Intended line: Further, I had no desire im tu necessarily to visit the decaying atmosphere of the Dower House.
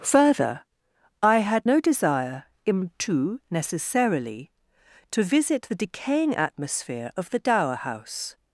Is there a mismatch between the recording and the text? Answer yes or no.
no